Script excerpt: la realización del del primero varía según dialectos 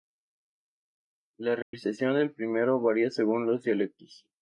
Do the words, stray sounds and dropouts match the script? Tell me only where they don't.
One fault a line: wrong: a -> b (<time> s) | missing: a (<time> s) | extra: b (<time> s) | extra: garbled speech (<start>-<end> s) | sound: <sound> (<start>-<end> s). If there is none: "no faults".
sound: dropout (1.6-1.7 s)
missing: del (2.3 s)
extra: los (3.5 s)